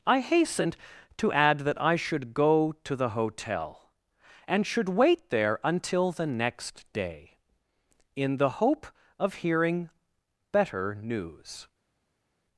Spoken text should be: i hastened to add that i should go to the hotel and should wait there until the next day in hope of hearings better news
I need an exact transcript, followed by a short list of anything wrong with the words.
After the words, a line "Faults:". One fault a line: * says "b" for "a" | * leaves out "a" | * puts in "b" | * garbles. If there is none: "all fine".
i hastened to add that i should go to the hotel and should wait there until the next day in the hope of hearing better news
Faults:
* puts in "the"
* says "hearing" for "hearings"